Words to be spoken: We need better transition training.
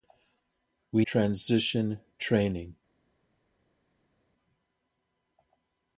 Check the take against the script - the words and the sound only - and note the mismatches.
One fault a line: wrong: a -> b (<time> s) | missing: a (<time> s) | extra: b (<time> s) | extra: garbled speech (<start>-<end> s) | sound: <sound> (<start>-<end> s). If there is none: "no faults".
missing: need better (1.1 s)